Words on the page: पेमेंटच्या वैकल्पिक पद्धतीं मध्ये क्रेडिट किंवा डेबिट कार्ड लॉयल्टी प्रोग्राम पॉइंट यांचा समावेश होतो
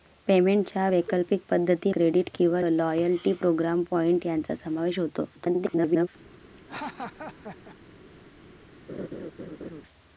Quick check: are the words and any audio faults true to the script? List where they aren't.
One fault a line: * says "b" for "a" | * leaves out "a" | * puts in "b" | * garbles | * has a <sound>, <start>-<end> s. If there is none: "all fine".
* leaves out "मध्ये"
* leaves out "डेबिट कार्ड"
* garbles
* has a laugh, 6.6-7.8 s
* has a laugh, 8.9-9.8 s